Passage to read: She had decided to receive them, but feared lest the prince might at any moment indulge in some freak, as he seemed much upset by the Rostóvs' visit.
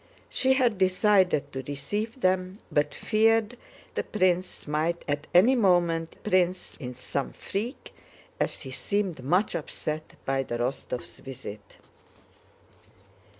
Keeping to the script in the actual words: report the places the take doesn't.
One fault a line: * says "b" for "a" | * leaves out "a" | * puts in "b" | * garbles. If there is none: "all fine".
* leaves out "lest"
* says "prince" for "indulge"